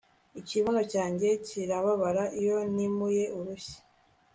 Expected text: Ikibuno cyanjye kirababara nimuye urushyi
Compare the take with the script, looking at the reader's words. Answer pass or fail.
fail